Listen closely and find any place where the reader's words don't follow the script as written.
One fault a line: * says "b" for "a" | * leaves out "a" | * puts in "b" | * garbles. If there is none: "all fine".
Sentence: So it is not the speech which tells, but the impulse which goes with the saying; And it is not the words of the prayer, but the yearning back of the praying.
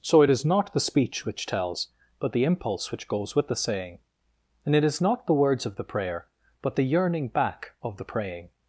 all fine